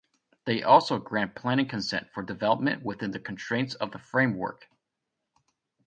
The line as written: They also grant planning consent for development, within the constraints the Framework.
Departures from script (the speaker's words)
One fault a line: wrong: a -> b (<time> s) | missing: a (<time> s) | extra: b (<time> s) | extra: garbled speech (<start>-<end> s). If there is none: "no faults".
extra: of (3.8 s)